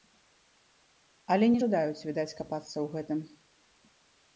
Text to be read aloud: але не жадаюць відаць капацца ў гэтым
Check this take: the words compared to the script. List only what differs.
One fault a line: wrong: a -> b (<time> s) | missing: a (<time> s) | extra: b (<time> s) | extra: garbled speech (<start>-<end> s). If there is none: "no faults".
no faults